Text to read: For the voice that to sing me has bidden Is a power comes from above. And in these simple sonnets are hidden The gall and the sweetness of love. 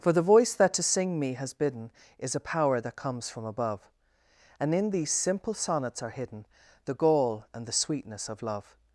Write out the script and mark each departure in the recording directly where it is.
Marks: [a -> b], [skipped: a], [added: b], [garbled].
For the voice that to sing me has bidden Is a power [added: that] comes from above. And in these simple sonnets are hidden The gall and the sweetness of love.